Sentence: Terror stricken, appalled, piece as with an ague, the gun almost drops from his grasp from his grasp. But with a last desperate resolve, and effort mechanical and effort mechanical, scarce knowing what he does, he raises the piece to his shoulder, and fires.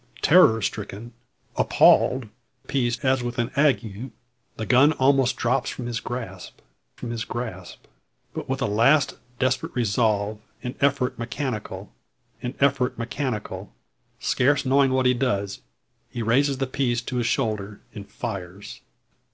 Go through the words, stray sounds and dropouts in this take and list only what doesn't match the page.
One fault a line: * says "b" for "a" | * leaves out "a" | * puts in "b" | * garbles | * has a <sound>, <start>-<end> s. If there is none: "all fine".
all fine